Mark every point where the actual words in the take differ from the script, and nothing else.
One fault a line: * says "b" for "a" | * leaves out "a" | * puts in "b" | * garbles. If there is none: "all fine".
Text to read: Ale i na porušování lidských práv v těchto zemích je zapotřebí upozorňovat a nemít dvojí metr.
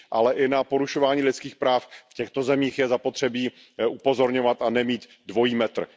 all fine